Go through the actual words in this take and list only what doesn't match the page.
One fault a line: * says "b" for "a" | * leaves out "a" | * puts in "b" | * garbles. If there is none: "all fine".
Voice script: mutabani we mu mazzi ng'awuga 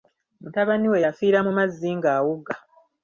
* puts in "yafiira"